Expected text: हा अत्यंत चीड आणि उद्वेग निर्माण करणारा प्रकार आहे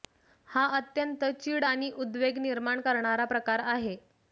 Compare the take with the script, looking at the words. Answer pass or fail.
pass